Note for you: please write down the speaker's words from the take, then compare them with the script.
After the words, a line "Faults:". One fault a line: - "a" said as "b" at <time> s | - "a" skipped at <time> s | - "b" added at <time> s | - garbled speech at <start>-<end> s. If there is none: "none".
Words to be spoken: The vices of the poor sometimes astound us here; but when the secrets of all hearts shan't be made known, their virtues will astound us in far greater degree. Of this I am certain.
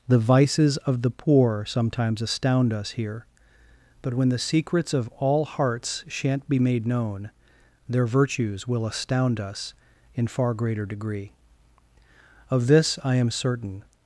The vices of the poor sometimes astound us here; but when the secrets of all hearts shan't be made known, their virtues will astound us in far greater degree. Of this I am certain.
Faults:
none